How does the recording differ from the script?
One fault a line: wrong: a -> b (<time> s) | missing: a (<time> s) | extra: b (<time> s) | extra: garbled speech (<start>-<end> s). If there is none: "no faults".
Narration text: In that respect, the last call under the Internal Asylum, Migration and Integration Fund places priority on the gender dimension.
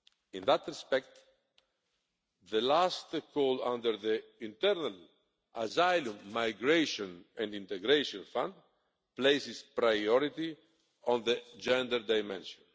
no faults